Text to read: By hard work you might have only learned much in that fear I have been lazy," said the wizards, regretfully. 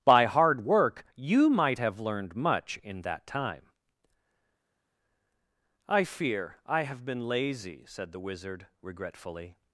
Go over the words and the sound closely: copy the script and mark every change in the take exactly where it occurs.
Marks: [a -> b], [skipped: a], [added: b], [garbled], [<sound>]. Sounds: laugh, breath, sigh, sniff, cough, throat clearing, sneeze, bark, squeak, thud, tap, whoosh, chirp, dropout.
By hard work you might have [skipped: only] learned much in that [added: time I] fear I have been lazy," said the [wizards, -> wizard] regretfully.